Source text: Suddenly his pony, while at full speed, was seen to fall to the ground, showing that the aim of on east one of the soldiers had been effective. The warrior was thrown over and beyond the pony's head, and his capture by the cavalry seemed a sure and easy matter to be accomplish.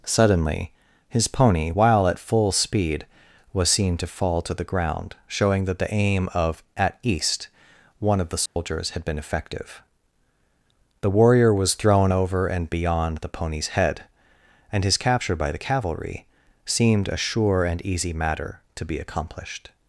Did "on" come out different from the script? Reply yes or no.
yes